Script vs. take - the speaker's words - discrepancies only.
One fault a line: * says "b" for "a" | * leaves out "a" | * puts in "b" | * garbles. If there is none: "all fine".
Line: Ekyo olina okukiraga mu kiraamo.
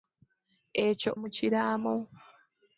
* leaves out "olina okukiraga"